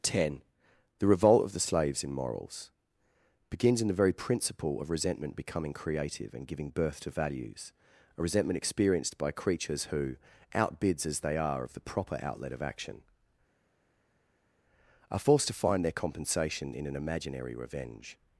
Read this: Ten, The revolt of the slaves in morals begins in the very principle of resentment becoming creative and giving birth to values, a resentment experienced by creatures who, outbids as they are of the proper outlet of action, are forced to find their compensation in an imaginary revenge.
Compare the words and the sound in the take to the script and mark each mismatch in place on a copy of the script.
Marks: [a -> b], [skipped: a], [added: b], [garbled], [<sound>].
Ten, The revolt of the slaves in morals begins in the very principle of resentment becoming creative and giving birth to values, a resentment experienced by creatures who, outbids as they are of the proper outlet of action, are forced to find their compensation in an imaginary revenge.